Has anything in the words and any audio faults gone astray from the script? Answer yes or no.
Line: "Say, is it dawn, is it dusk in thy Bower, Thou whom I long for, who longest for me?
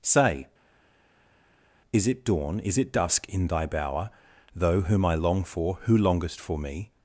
yes